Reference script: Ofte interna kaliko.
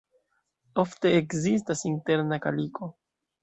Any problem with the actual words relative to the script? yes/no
yes